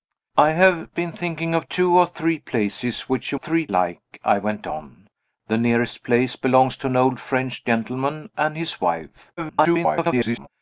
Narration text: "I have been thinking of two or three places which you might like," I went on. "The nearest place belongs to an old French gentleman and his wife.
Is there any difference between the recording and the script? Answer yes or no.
yes